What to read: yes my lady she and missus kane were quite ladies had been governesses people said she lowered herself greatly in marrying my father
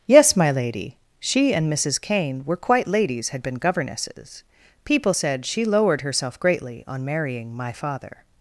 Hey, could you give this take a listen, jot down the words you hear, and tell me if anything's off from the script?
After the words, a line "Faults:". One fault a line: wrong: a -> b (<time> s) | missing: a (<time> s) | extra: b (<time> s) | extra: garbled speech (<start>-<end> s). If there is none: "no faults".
yes my lady she and missus kane were quite ladies had been governesses people said she lowered herself greatly on marrying my father
Faults:
wrong: in -> on (6.9 s)